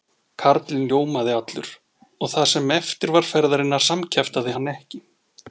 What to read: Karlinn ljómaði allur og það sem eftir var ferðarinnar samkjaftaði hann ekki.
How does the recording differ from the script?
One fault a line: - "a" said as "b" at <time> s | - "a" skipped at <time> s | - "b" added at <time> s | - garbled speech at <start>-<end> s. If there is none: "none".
none